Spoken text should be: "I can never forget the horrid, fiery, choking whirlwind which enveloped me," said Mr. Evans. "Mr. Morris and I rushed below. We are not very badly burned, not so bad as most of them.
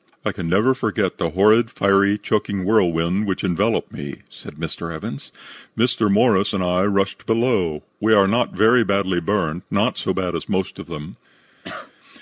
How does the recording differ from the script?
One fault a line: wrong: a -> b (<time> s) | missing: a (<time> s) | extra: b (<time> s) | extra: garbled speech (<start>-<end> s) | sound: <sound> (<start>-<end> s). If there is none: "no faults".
sound: cough (11.6-11.9 s)